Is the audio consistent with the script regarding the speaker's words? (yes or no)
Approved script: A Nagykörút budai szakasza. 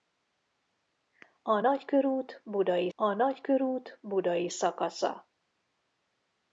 no